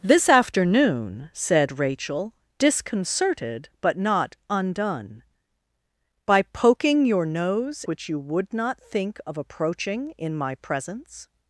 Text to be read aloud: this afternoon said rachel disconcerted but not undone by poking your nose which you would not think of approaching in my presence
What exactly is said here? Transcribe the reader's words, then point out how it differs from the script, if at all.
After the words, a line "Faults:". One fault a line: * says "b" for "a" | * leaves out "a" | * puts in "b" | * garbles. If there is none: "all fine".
this afternoon said rachel disconcerted but not undone by poking your nose which you would not think of approaching in my presence
Faults:
all fine